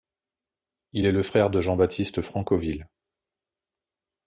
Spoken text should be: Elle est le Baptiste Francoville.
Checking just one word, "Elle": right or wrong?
wrong